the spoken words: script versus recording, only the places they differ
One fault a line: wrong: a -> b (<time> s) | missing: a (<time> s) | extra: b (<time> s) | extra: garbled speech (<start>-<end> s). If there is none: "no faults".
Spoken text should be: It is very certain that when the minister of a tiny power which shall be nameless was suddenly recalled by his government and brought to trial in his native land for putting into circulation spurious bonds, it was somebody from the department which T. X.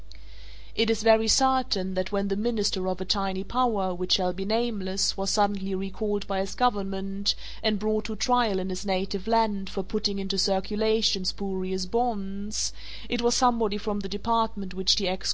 no faults